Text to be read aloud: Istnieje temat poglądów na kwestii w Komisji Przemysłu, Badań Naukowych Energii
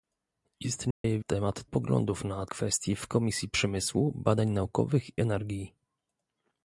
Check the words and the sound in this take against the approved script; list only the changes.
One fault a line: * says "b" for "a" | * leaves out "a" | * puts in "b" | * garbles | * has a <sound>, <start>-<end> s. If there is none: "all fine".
* has a dropout, 0.9-1.0 s